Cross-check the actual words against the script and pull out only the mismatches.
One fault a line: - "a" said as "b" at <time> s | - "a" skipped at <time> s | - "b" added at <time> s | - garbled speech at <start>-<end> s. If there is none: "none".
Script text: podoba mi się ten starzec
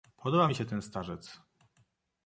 none